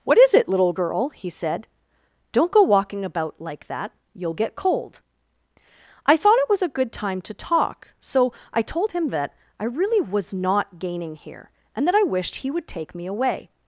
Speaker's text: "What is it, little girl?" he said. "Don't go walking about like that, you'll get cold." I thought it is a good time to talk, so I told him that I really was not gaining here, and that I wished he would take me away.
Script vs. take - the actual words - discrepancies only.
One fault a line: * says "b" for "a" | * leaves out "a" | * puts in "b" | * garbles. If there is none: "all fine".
* says "was" for "is"